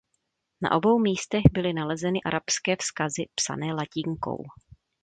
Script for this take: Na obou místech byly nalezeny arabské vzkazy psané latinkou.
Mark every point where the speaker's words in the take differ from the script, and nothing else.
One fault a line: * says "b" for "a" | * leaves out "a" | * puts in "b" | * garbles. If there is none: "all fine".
all fine